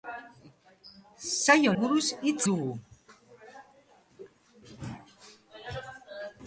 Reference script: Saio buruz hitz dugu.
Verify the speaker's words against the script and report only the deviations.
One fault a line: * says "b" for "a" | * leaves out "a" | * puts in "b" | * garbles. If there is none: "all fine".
all fine